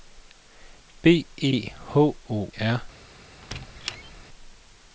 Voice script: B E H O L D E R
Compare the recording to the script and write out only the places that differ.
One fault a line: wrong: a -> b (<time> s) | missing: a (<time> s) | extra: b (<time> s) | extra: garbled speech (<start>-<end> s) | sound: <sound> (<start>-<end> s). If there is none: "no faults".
missing: L D E (2.5 s)
sound: squeak (3.4-4.2 s)